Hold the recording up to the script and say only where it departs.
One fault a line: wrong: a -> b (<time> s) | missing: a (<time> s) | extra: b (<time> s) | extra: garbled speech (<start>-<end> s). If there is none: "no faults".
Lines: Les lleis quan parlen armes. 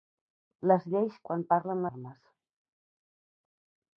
no faults